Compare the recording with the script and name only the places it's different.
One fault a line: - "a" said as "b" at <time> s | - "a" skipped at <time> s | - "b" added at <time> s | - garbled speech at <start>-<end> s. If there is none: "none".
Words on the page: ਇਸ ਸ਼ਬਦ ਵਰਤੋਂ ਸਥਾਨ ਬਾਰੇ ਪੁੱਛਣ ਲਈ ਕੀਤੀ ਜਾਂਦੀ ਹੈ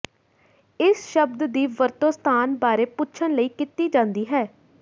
- "ਦੀ" added at 1.5 s